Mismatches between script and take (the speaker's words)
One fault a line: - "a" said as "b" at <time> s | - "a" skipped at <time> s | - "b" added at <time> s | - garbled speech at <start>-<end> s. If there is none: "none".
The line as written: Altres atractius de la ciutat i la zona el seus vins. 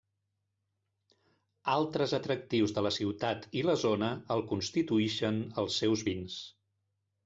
- "constituïxen els" added at 4.5 s